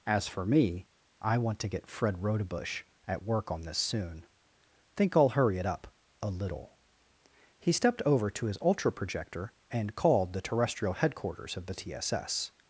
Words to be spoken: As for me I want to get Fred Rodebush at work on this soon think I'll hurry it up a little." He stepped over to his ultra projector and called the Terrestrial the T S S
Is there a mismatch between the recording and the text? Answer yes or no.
yes